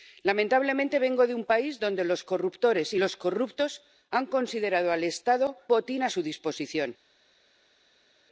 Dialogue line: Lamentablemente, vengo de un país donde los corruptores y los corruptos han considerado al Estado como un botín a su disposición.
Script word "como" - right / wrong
wrong